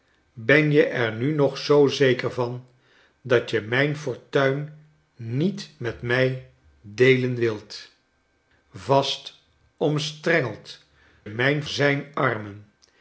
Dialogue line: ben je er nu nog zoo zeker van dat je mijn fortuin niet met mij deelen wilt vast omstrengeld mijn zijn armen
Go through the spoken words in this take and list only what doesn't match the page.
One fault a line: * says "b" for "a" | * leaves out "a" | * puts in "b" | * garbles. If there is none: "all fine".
all fine